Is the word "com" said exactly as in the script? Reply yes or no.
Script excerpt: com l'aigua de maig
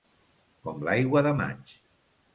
yes